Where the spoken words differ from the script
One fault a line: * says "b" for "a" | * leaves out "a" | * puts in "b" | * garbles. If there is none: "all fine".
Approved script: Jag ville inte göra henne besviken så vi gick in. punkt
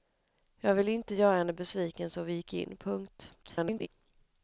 * garbles